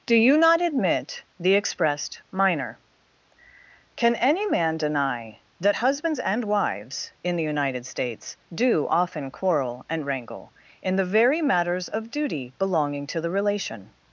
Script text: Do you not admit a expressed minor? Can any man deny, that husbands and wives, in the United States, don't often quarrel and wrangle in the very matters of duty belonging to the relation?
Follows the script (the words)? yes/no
no